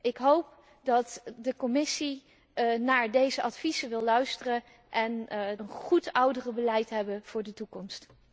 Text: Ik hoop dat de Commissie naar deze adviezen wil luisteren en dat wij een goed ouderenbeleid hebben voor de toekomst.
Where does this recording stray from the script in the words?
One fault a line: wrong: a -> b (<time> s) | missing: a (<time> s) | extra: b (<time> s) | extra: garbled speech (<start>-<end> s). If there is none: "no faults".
missing: dat wij (5.3 s)